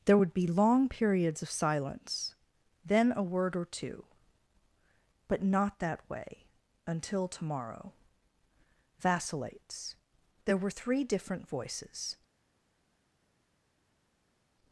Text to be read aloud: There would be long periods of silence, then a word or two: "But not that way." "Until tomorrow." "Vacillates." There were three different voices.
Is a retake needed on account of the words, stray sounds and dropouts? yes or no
no